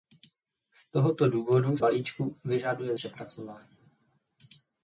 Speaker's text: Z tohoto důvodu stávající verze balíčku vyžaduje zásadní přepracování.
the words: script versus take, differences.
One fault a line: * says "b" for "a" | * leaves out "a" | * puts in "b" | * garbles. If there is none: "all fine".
* leaves out "stávající verze"
* leaves out "zásadní"